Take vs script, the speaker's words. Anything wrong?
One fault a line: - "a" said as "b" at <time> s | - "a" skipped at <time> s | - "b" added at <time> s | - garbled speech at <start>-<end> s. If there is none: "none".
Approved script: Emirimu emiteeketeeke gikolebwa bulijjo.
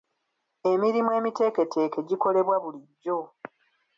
none